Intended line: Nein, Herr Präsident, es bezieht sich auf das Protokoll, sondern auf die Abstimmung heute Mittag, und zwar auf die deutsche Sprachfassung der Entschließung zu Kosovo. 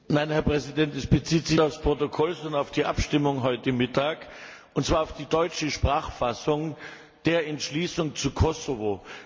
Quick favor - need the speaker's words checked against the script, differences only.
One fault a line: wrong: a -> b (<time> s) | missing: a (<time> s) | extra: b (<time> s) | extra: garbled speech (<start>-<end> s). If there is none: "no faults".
no faults